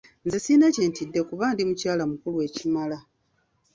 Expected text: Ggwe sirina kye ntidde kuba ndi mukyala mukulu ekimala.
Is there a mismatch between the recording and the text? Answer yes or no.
yes